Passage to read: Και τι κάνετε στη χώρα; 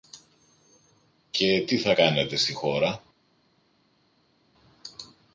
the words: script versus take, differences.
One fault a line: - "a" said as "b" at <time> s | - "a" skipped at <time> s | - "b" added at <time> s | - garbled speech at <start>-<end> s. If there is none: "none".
- "θα" added at 1.8 s